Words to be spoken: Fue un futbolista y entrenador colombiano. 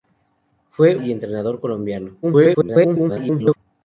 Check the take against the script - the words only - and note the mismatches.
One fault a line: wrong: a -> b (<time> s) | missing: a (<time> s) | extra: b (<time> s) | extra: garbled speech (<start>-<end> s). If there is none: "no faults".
missing: un futbolista (0.9 s)
extra: garbled speech (2.2-3.6 s)